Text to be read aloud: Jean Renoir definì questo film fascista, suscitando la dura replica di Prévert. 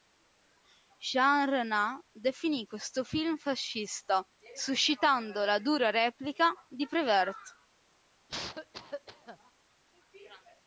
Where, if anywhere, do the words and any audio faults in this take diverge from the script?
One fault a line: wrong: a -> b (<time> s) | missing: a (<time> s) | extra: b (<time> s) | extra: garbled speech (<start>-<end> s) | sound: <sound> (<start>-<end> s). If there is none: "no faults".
sound: cough (8.3-9.5 s)